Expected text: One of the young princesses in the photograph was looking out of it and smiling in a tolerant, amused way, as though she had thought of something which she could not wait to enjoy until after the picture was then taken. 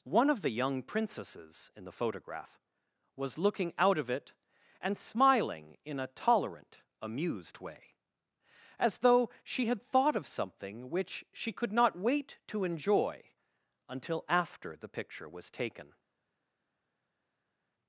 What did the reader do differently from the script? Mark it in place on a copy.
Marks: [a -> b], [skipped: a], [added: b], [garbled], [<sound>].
One of the young princesses in the photograph was looking out of it and smiling in a tolerant, amused way, as though she had thought of something which she could not wait to enjoy until after the picture was [skipped: then] taken.